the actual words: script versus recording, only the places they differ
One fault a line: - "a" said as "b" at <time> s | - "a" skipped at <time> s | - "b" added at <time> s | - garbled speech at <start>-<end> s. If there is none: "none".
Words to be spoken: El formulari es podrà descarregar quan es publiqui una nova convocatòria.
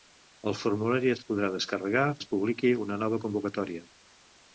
- "quan" skipped at 2.1 s